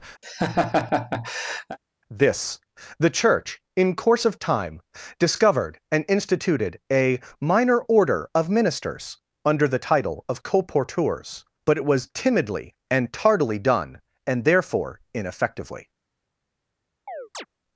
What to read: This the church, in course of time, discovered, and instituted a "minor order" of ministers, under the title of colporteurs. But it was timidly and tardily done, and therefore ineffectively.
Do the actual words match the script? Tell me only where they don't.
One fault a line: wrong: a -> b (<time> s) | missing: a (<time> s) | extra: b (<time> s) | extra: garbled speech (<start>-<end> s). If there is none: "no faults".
no faults